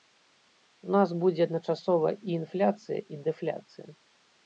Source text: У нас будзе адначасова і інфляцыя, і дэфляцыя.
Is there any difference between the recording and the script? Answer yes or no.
no